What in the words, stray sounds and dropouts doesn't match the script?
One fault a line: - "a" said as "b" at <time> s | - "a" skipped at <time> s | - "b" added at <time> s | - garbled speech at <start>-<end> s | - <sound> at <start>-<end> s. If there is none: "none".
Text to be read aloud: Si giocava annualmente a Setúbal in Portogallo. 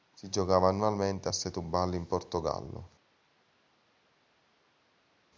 none